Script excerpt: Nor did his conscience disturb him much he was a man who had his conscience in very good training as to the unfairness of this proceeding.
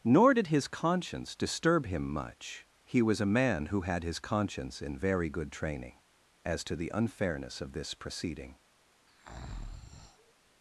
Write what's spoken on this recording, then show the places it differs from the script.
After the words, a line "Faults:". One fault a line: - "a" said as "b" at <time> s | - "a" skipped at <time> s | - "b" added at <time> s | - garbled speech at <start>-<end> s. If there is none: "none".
Nor did his conscience disturb him much he was a man who had his conscience in very good training as to the unfairness of this proceeding.
Faults:
none